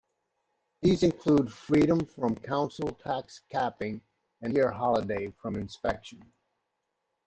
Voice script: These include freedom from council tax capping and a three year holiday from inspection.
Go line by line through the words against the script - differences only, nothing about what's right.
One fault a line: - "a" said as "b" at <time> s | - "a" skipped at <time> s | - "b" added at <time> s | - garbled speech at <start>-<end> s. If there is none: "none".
- "a three" skipped at 4.5 s